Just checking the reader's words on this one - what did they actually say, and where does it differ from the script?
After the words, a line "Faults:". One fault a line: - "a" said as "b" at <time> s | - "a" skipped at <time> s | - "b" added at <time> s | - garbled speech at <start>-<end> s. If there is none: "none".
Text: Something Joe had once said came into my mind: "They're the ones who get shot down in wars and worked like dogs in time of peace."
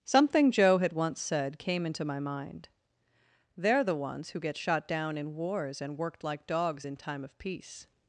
Something Joe had once said came into my mind: "They're the ones who get shot down in wars and worked like dogs in time of peace."
Faults:
none